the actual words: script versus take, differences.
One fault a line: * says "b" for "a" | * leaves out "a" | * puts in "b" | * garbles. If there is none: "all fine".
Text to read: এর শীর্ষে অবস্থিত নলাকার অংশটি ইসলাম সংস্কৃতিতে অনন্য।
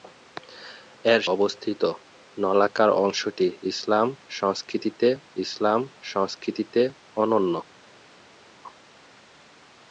* leaves out "শীর্ষে"
* puts in "ইসলাম সংস্কৃতিতে"